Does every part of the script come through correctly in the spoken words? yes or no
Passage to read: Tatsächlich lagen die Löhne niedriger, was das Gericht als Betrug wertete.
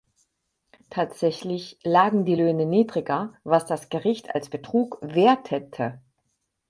yes